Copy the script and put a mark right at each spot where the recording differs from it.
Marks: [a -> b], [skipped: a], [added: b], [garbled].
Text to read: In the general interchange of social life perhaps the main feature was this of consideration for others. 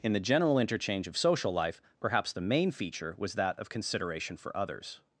In the general interchange of social life perhaps the main feature was [this -> that] of consideration for others.